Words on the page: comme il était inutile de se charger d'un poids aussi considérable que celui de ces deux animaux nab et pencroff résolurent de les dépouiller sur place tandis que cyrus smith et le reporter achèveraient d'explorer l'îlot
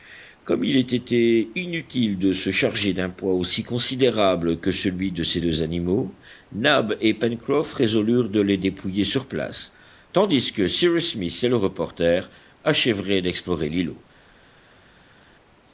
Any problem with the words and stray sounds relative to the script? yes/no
no